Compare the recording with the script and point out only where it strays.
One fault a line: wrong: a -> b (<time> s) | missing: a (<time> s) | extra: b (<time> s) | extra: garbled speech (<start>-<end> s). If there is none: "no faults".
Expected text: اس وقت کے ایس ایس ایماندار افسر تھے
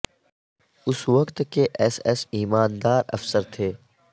no faults